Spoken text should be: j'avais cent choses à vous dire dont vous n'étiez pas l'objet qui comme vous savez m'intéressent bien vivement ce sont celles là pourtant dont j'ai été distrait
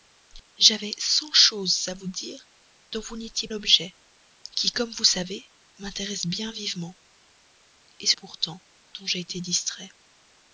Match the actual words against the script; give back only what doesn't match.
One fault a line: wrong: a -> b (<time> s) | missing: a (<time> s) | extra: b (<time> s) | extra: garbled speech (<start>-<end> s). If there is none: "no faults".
missing: pas (3.5 s)
missing: sont celles là (8.2 s)